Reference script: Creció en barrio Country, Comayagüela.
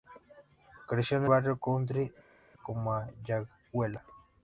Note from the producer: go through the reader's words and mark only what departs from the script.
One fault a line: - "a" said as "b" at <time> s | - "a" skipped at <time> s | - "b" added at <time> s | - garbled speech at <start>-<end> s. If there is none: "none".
none